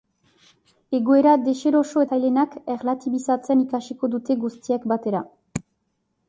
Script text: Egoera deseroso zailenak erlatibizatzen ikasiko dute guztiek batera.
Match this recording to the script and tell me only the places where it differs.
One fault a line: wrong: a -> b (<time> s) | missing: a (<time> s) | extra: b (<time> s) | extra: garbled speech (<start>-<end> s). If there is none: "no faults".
no faults